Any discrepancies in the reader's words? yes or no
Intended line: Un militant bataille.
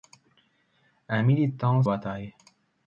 no